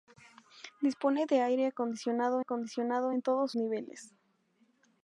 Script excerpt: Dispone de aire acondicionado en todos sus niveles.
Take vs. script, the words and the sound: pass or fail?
fail